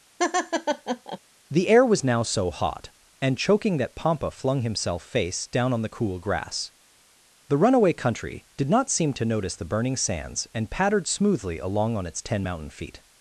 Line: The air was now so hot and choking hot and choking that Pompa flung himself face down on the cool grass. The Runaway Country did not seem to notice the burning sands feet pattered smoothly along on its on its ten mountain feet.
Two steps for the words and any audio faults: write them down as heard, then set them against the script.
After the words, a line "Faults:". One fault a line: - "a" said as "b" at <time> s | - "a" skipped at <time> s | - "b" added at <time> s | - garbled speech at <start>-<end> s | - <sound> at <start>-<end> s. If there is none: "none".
The air was now so hot and choking that Pompa flung himself face down on the cool grass. The Runaway Country did not seem to notice the burning sands and pattered smoothly along on its ten mountain feet.
Faults:
- laugh at 0.2-1.2 s
- "hot and choking" skipped at 3.8 s
- "feet" said as "and" at 10.5 s
- "on its" skipped at 12.2 s